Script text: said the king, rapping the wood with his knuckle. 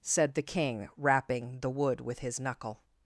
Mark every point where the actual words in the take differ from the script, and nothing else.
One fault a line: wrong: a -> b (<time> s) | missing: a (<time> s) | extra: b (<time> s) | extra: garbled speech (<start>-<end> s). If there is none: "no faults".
no faults